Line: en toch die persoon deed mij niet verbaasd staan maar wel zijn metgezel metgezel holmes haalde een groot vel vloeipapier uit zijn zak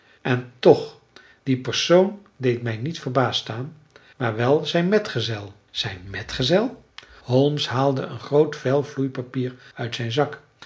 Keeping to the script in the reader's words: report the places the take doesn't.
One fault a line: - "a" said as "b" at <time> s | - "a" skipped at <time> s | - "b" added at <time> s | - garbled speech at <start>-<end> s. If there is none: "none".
- "zijn" added at 5.7 s